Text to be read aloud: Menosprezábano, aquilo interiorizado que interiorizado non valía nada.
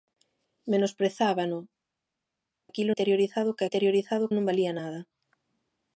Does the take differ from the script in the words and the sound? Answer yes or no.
no